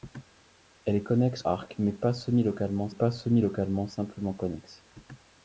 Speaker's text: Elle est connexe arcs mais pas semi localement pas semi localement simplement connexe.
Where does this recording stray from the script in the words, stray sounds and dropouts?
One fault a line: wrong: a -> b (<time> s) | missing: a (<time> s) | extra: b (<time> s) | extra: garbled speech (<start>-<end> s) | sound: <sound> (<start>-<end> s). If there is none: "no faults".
no faults